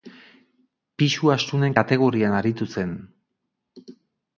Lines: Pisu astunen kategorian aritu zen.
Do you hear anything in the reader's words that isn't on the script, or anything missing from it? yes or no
no